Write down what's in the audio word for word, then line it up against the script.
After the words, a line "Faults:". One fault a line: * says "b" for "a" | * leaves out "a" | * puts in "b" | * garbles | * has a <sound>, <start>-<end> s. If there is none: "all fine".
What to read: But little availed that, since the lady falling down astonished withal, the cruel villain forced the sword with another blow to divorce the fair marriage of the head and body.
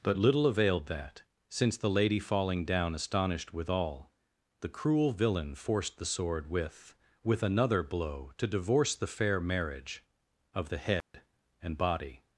But little availed that, since the lady falling down astonished withal, the cruel villain forced the sword with with another blow to divorce the fair marriage of the head and body.
Faults:
* puts in "with"
* has a dropout, 11.0-11.1 s